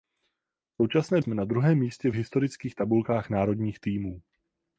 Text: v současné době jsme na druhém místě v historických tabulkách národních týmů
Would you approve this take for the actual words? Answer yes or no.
no